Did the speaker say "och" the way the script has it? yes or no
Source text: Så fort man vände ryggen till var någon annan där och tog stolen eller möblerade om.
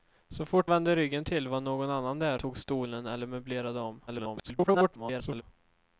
no